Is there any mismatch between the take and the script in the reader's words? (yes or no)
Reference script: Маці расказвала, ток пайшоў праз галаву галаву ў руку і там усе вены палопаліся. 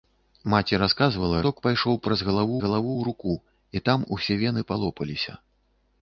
no